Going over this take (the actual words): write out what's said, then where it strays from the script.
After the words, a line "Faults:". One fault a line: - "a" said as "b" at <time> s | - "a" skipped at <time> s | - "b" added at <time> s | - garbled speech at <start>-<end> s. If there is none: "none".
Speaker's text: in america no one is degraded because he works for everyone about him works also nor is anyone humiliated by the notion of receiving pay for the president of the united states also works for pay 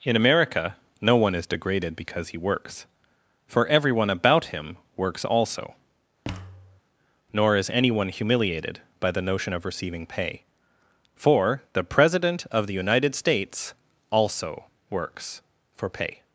in america no one is degraded because he works for everyone about him works also nor is anyone humiliated by the notion of receiving pay for the president of the united states also works for pay
Faults:
none